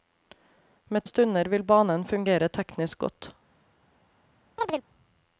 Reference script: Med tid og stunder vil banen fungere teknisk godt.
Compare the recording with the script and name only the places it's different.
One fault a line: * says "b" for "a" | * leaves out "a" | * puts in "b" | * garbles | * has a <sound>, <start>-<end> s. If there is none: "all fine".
* leaves out "tid"
* has a chirp, 4.6-4.8 s